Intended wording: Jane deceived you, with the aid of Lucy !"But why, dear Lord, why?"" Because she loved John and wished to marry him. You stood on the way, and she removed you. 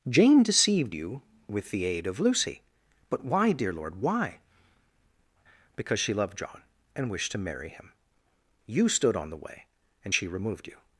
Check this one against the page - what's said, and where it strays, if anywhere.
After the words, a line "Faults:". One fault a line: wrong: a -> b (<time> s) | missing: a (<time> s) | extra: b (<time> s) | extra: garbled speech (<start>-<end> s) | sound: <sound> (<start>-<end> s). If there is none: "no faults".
Jane deceived you, with the aid of Lucy !"But why, dear Lord, why?"" Because she loved John and wished to marry him. You stood on the way, and she removed you.
Faults:
no faults